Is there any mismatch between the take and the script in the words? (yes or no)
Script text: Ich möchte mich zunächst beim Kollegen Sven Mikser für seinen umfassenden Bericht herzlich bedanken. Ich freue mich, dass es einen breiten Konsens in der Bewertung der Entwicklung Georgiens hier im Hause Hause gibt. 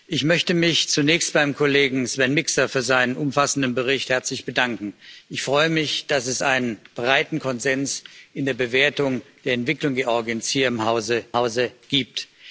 no